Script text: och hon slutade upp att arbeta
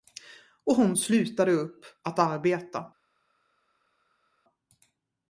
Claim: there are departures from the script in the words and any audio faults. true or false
false